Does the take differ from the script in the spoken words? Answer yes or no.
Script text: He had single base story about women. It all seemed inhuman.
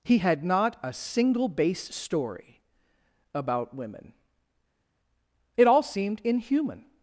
yes